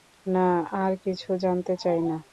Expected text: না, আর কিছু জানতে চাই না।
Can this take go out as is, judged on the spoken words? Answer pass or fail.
pass